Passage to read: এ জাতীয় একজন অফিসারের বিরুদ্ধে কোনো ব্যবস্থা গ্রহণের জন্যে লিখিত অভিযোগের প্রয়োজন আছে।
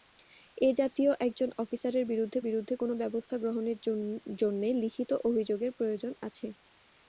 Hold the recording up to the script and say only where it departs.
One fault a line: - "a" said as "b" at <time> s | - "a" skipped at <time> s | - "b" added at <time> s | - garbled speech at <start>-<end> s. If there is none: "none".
- "বিরুদ্ধে" added at 2.4 s